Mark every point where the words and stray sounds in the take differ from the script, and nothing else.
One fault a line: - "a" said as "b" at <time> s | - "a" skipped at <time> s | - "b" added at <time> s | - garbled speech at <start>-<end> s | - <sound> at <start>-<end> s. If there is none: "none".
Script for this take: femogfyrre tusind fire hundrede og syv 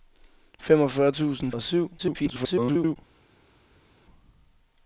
- "fire hundrede" skipped at 1.5 s
- garbled speech at 2.0-3.0 s